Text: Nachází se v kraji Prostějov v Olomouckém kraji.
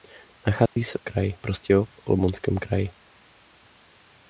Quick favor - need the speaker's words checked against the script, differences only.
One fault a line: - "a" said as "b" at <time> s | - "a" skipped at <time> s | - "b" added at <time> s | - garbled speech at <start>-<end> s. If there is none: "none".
none